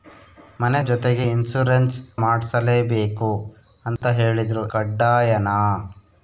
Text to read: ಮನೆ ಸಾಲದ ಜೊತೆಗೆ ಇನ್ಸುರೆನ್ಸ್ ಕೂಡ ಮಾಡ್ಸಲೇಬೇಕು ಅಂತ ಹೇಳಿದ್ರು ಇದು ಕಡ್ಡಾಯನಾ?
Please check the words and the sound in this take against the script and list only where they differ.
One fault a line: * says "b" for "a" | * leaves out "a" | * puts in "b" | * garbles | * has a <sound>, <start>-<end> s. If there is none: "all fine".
* leaves out "ಸಾಲದ"
* leaves out "ಕೂಡ"
* has a dropout, 4.0-4.0 s
* leaves out "ಇದು"